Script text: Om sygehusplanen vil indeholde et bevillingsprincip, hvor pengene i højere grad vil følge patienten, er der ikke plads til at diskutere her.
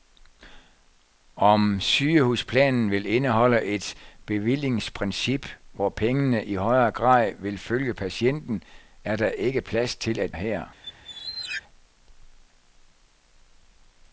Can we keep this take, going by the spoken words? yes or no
no